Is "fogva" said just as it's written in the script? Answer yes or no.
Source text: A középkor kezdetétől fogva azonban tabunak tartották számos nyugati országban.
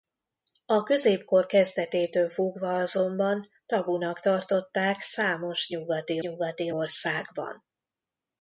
yes